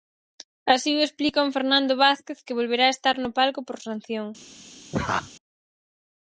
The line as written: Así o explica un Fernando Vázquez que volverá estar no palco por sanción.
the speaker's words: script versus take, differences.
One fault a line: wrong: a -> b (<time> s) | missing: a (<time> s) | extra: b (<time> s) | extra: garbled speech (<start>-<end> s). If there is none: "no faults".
no faults